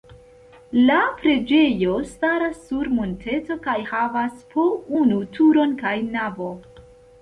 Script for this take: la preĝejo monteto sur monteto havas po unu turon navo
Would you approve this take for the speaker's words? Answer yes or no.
no